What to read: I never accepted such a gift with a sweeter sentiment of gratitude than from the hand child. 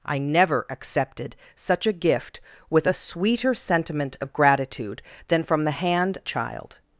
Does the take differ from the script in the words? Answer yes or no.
no